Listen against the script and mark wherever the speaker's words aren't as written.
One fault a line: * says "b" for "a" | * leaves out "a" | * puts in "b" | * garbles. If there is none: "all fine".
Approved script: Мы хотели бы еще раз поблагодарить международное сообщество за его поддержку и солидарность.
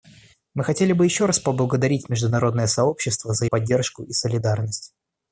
* leaves out "его"